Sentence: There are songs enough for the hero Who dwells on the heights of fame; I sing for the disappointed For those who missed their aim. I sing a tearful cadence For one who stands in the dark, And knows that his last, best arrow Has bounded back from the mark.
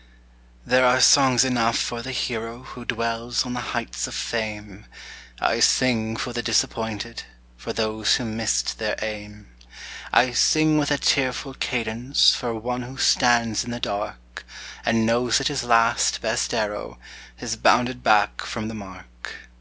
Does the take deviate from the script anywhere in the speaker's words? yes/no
yes